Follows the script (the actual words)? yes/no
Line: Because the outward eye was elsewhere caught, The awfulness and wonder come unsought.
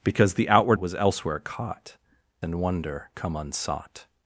no